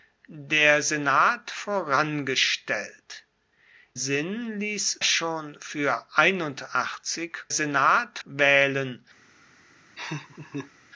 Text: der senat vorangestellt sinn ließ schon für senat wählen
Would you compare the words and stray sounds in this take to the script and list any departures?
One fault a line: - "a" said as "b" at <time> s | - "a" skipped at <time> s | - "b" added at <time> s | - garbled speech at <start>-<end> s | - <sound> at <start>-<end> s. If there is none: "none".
- laugh at 10.0-10.7 s